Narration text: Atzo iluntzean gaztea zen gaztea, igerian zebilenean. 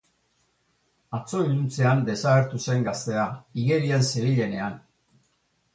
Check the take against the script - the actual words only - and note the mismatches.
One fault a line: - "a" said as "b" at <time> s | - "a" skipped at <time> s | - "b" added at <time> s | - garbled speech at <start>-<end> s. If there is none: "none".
- "gaztea" said as "desagertu" at 2.1 s